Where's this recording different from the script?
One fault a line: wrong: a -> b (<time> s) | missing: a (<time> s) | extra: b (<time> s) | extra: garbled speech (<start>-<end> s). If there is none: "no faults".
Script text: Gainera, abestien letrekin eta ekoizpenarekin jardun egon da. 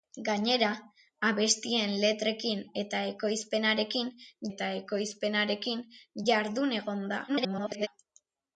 extra: eta ekoizpenarekin (4.5 s)
extra: garbled speech (7.3-7.9 s)